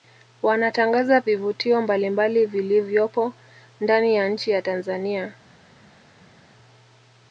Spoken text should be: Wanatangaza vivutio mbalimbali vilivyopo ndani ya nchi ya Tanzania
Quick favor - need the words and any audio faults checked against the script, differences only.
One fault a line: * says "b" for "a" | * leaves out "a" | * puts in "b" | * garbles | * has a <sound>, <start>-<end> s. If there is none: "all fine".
all fine